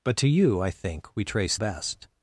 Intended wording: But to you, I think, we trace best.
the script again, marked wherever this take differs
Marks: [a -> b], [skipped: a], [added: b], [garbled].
But to you, I think, we trace best.